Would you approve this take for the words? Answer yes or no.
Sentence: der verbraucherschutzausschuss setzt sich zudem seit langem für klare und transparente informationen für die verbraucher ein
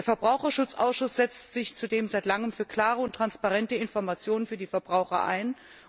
yes